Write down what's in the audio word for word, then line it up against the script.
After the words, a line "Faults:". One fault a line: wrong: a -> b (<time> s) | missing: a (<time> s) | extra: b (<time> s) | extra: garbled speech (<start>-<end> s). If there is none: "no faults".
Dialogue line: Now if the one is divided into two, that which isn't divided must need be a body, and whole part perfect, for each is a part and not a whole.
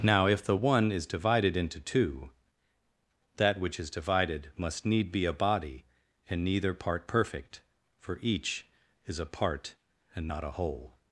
Now if the one is divided into two, that which is divided must need be a body, and neither part perfect, for each is a part and not a whole.
Faults:
wrong: isn't -> is (3.8 s)
wrong: whole -> neither (6.4 s)